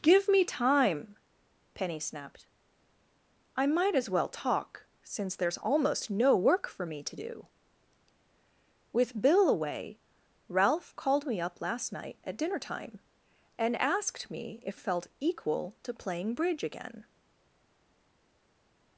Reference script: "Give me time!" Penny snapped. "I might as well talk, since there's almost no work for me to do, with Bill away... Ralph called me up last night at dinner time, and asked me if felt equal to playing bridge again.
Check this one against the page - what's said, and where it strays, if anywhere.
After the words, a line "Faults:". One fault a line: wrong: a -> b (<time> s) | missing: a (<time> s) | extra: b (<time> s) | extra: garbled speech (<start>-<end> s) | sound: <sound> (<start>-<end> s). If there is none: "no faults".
"Give me time!" Penny snapped. "I might as well talk, since there's almost no work for me to do, with Bill away... Ralph called me up last night at dinner time, and asked me if felt equal to playing bridge again.
Faults:
no faults